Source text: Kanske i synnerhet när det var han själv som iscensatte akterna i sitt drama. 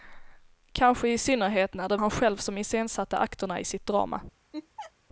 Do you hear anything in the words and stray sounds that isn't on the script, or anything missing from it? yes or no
yes